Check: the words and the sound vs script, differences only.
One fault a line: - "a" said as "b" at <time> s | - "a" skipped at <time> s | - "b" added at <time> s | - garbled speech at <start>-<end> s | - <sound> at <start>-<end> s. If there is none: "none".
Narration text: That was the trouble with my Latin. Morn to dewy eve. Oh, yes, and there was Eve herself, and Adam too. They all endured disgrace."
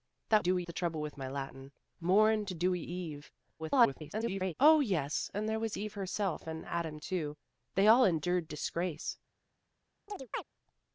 - "was" said as "dewy" at 0.4 s
- garbled speech at 3.6-4.5 s
- chirp at 10.1-10.4 s